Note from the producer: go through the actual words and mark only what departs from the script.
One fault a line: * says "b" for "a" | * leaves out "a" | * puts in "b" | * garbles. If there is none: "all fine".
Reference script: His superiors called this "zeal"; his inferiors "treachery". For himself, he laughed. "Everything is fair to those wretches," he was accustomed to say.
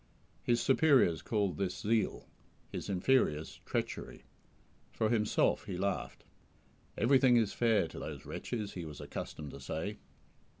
all fine